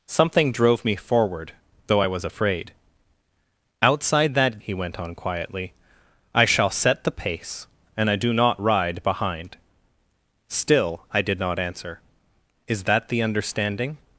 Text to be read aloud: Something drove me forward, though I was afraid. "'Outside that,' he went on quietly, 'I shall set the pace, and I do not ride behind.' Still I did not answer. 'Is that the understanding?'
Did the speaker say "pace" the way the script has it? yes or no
yes